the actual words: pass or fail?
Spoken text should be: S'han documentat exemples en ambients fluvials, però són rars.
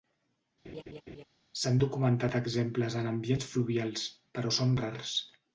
pass